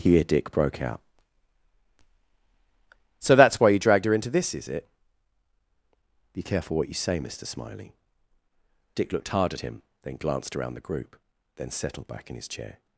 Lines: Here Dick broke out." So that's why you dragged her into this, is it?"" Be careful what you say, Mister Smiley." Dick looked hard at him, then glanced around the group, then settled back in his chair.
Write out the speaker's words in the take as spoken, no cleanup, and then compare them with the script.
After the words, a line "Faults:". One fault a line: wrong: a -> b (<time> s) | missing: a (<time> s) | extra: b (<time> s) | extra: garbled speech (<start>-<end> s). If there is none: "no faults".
Here Dick broke out." So that's why you dragged her into this, is it?"" Be careful what you say, Mister Smiley." Dick looked hard at him, then glanced around the group, then settled back in his chair.
Faults:
no faults